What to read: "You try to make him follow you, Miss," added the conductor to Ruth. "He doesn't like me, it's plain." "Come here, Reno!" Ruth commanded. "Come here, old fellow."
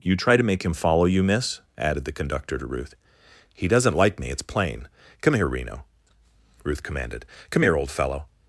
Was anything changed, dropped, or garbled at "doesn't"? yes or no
no